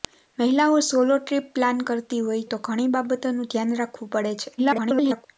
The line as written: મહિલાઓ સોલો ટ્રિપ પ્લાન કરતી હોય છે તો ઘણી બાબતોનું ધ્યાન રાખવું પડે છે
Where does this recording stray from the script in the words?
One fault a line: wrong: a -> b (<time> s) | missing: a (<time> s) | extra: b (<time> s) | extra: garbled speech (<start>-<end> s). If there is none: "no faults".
missing: છે (2.5 s)
extra: garbled speech (4.6-5.3 s)